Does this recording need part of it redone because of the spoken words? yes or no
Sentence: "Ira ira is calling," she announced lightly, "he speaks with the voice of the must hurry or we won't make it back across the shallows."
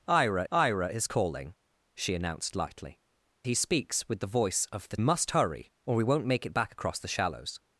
no